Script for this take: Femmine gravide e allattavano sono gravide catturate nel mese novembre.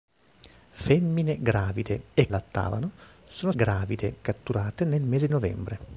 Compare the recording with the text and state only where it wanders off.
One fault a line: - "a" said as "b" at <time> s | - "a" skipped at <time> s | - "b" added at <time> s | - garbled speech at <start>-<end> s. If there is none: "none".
none